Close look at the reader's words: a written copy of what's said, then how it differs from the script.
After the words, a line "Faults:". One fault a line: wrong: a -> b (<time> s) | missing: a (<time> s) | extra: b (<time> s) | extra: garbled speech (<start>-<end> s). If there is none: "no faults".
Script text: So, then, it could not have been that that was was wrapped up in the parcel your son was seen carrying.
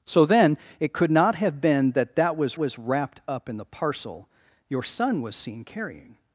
So, then, it could not have been that that was was wrapped up in the parcel your son was seen carrying.
Faults:
no faults